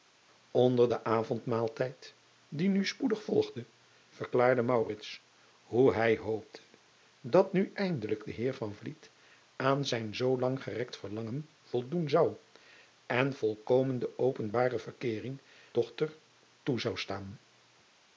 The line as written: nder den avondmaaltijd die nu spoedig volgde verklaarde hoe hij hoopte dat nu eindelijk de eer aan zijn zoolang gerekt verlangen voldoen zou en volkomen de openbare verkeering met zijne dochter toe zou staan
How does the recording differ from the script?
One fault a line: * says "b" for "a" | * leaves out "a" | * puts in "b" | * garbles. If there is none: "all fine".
* leaves out "met zijne"